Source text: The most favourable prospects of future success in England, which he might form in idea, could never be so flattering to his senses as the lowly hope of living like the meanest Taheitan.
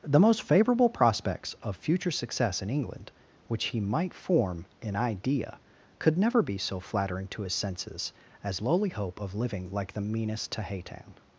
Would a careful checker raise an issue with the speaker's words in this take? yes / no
yes